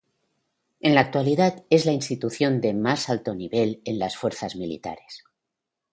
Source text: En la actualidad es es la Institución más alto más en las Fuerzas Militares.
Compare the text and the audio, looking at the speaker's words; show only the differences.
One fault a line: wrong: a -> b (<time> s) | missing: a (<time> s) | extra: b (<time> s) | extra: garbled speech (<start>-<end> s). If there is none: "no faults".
missing: es (1.8 s)
extra: de (2.6 s)
wrong: más -> nivel (3.3 s)